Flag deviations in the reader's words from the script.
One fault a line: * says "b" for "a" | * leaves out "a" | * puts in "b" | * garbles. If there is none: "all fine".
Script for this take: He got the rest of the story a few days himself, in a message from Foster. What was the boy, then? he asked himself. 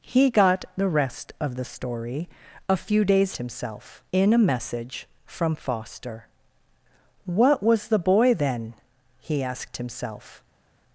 all fine